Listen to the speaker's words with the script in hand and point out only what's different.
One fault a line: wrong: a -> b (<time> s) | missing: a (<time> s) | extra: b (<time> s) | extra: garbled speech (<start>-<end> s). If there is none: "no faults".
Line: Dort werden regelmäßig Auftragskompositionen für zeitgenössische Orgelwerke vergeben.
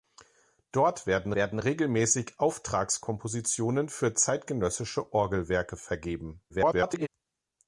extra: werden (1.3 s)
extra: garbled speech (6.5-7.1 s)